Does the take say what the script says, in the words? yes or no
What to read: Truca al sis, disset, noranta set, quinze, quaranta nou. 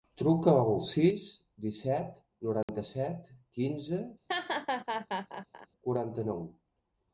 yes